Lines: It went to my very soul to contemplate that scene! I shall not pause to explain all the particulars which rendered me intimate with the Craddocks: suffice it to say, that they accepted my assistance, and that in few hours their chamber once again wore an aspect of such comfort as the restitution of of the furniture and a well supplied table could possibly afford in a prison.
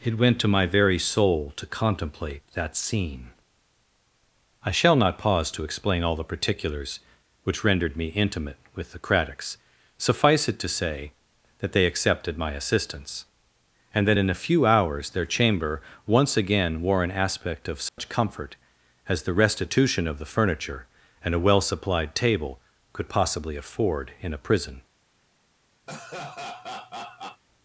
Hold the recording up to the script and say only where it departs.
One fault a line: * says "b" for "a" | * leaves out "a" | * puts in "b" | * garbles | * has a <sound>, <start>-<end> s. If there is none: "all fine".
* puts in "a"
* has a dropout, 17.9-18.0 s
* leaves out "of"
* has a laugh, 25.9-27.4 s